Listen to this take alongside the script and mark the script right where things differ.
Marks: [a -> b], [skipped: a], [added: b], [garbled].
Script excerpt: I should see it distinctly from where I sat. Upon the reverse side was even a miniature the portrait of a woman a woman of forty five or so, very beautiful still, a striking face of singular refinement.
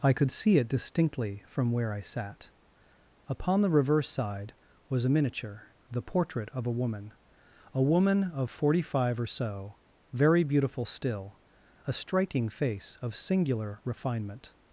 I [should -> could] see it distinctly from where I sat. Upon the reverse side was [skipped: even] a miniature the portrait of a woman a woman of forty five or so, very beautiful still, a striking face of singular refinement.